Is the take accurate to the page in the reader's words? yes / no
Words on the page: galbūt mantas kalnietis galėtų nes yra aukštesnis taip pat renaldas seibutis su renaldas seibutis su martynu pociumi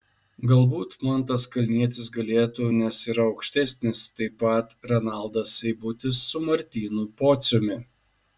no